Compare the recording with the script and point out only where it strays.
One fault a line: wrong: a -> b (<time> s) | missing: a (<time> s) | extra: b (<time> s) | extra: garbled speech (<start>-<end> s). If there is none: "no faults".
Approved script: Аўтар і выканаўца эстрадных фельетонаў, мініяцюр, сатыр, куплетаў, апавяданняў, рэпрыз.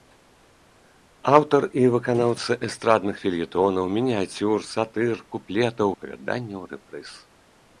no faults